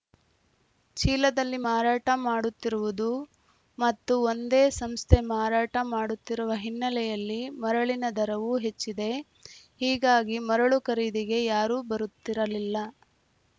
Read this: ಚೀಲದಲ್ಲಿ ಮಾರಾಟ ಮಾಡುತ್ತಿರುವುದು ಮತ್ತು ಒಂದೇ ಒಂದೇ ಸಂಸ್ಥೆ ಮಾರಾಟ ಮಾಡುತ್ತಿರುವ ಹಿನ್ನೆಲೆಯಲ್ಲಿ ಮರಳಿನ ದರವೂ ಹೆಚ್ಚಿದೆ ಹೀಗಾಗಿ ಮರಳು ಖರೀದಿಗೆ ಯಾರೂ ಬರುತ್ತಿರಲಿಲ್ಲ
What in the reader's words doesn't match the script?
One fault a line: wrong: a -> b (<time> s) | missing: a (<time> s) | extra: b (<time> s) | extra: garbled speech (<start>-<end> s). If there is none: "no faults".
missing: ಒಂದೇ (4.6 s)